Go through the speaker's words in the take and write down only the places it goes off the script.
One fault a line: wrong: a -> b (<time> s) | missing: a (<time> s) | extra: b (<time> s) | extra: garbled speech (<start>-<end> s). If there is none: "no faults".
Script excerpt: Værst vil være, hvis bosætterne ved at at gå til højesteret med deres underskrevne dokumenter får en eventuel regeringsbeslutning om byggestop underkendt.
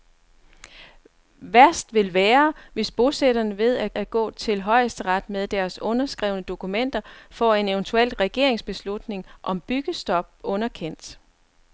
no faults